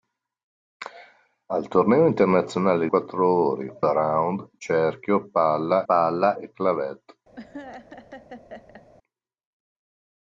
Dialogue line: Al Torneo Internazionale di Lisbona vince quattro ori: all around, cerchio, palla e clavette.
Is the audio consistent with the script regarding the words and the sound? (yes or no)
no